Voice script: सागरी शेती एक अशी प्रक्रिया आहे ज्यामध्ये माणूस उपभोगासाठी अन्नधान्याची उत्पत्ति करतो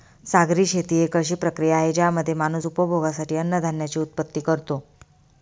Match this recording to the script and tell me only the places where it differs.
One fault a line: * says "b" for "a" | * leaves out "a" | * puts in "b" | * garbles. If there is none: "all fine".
all fine